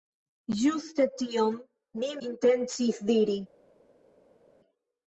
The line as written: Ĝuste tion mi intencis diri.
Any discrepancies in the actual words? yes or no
no